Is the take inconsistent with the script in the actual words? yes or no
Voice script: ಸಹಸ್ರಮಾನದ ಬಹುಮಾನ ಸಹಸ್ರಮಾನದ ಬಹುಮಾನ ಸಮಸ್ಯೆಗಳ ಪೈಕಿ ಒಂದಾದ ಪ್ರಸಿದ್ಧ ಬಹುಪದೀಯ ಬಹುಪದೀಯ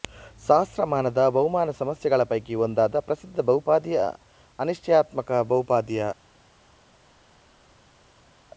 yes